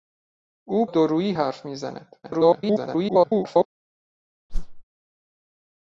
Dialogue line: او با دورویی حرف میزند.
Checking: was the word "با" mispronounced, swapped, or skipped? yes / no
yes